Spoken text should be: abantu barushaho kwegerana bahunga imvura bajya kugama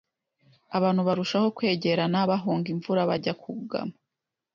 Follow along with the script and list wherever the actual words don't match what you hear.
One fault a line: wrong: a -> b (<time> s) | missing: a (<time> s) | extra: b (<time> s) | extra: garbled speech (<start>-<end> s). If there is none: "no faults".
no faults